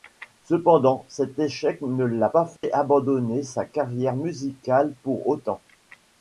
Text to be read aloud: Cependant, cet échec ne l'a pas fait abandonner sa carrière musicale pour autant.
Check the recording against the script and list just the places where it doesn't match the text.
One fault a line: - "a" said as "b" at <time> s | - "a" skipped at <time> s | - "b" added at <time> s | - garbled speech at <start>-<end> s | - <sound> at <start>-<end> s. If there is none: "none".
- dropout at 2.6-2.6 s